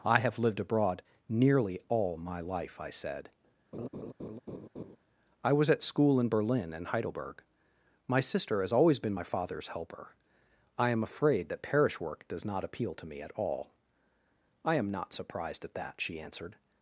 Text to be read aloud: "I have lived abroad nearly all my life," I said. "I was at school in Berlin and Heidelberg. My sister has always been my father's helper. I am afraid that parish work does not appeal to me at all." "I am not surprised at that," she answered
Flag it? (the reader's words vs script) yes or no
no